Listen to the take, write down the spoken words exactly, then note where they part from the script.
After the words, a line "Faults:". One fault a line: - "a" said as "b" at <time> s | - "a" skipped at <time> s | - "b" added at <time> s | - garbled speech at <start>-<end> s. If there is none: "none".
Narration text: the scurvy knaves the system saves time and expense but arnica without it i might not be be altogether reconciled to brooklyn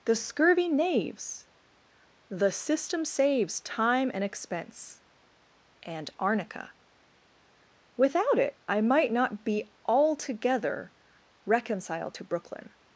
the scurvy knaves the system saves time and expense and arnica without it i might not be altogether reconciled to brooklyn
Faults:
- "but" said as "and" at 5.8 s
- "be" skipped at 9.7 s